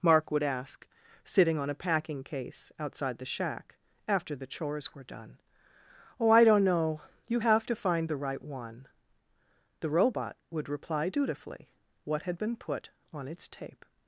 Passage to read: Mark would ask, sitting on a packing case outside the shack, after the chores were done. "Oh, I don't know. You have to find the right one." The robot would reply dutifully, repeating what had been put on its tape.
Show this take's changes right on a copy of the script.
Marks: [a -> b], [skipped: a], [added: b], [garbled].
Mark would ask, sitting on a packing case outside the shack, after the chores were done. "Oh, I don't know. You have to find the right one." The robot would reply dutifully, [skipped: repeating] what had been put on its tape.